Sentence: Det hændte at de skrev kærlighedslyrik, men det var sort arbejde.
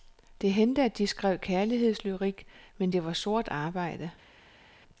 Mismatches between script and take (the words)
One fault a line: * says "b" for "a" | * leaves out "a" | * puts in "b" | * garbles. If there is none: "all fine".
all fine